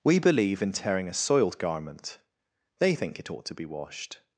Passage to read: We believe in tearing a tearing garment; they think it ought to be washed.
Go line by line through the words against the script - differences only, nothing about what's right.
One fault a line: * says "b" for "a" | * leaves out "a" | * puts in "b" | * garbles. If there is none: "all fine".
* says "soiled" for "tearing"